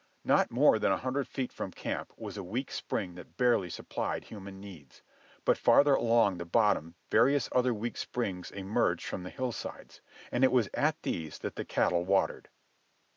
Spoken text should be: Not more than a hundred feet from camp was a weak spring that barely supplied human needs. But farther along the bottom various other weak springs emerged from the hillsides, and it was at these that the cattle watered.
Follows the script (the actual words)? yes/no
yes